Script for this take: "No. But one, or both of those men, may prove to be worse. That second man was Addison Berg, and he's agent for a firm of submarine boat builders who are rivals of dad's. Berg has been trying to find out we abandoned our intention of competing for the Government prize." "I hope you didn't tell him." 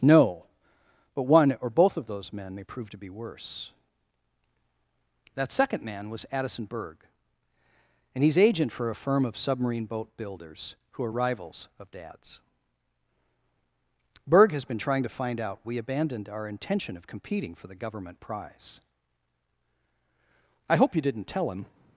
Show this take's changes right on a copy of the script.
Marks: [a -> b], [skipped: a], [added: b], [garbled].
"No. But one, or both of those men, may prove to be worse. That second man was Addison Berg, and he's agent for a firm of submarine boat builders who are rivals of dad's. Berg has been trying to find out we abandoned our intention of competing for the Government prize." "I hope you didn't tell him."